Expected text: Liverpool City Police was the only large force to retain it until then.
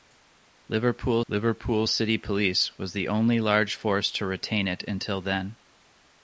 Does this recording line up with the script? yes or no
no